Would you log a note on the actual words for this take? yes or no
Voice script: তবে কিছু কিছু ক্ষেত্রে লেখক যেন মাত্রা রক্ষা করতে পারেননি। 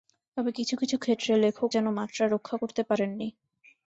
no